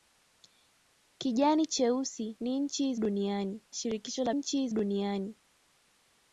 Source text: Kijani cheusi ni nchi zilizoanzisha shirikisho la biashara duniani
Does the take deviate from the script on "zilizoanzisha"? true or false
true